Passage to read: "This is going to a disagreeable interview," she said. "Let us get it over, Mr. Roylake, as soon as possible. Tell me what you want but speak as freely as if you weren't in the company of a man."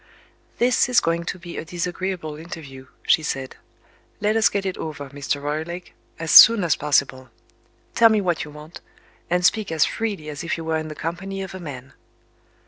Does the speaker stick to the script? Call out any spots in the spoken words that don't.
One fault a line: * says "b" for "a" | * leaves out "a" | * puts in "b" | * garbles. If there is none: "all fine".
* puts in "be"
* says "and" for "but"
* says "were" for "weren't"